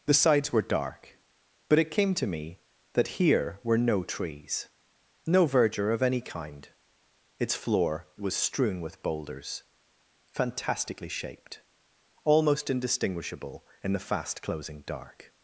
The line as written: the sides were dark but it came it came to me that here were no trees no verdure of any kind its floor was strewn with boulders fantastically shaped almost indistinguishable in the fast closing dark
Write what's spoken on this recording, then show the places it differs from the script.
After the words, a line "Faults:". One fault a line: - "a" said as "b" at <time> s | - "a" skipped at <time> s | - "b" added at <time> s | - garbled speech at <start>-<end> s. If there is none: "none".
the sides were dark but it came to me that here were no trees no verdure of any kind its floor was strewn with boulders fantastically shaped almost indistinguishable in the fast closing dark
Faults:
- "it came" skipped at 2.1 s